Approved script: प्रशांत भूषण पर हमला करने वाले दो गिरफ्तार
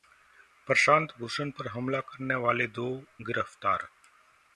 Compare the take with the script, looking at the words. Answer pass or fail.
pass